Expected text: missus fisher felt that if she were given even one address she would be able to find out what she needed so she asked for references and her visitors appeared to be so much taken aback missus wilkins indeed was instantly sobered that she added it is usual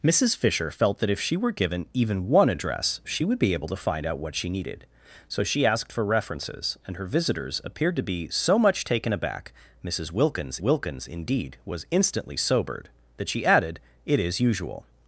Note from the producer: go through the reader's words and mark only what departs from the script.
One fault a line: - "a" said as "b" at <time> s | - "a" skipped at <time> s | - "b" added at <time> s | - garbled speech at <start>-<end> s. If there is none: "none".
- "wilkins" added at 10.6 s